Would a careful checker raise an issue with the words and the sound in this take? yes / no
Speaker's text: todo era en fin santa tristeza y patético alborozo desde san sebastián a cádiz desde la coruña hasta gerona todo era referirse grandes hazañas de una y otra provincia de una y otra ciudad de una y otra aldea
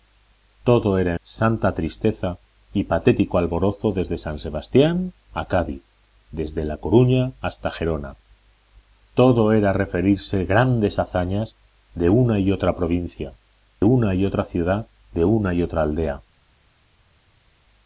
yes